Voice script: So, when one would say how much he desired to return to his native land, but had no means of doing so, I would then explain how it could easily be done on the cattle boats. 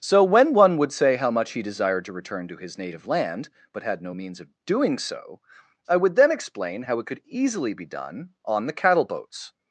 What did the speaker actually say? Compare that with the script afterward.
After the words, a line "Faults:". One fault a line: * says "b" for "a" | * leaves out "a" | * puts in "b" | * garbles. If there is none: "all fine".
So, when one would say how much he desired to return to his native land, but had no means of doing so, I would then explain how it could easily be done on the cattle boats.
Faults:
all fine